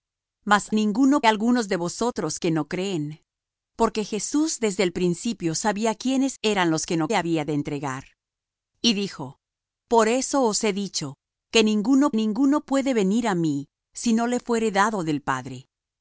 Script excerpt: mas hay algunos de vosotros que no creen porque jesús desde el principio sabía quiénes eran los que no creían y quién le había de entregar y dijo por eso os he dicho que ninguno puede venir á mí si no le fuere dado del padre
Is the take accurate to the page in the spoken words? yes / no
no